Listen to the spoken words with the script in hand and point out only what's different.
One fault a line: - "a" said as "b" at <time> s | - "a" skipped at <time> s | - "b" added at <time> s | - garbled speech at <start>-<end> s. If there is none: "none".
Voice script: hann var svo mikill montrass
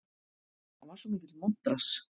none